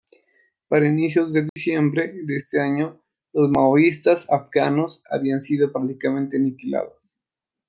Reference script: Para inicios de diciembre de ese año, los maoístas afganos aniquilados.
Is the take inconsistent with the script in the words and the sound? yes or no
yes